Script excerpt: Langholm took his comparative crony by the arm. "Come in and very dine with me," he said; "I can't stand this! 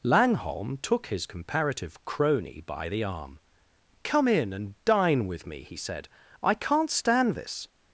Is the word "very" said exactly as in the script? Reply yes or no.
no